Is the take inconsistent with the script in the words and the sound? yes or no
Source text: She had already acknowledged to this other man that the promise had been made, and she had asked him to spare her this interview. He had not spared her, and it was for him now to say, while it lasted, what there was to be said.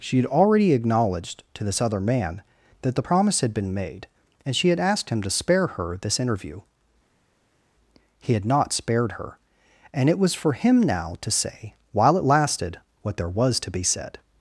no